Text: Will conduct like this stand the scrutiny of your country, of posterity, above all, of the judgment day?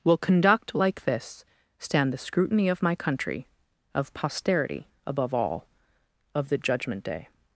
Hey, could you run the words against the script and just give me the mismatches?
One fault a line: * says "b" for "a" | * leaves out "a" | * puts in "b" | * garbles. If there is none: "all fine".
* says "my" for "your"